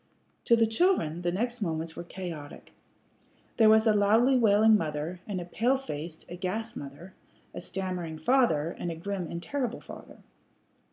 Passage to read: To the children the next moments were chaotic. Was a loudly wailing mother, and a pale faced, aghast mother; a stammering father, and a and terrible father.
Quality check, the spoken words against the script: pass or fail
fail